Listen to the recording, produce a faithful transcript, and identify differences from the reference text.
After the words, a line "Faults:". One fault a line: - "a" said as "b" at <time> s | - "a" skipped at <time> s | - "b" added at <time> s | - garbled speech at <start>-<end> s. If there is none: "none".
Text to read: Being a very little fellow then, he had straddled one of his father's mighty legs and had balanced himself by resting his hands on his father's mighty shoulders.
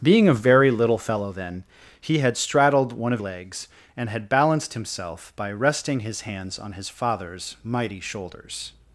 Being a very little fellow then, he had straddled one of legs and had balanced himself by resting his hands on his father's mighty shoulders.
Faults:
- "his father's mighty" skipped at 3.2 s